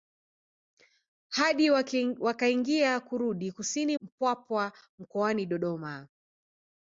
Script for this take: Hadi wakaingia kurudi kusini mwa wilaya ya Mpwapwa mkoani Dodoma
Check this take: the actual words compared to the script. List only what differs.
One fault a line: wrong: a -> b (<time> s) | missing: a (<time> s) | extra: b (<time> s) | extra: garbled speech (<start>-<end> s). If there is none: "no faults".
missing: mwa wilaya ya (4.0 s)